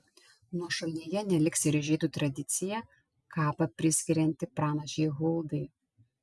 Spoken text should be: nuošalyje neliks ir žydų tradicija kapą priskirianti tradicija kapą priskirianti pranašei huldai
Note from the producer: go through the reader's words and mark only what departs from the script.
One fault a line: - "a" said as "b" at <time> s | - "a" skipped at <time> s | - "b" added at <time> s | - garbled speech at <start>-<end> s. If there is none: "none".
- "tradicija kapą priskirianti" skipped at 4.5 s